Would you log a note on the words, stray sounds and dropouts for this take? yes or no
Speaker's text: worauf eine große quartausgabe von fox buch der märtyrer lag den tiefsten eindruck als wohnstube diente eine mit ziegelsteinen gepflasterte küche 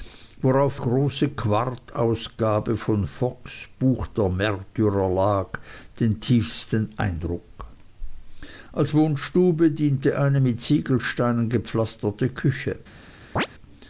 yes